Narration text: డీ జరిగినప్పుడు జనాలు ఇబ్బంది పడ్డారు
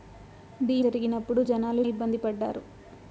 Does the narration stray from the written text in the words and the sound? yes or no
no